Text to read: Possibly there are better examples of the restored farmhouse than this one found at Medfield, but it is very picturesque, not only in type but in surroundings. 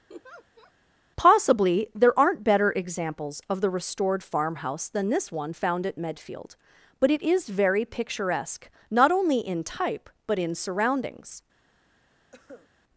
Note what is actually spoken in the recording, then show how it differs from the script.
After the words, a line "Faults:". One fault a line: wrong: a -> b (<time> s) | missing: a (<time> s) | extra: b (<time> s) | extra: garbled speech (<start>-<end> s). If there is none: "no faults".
Possibly there aren't better examples of the restored farmhouse than this one found at Medfield, but it is very picturesque, not only in type but in surroundings.
Faults:
wrong: are -> aren't (2.2 s)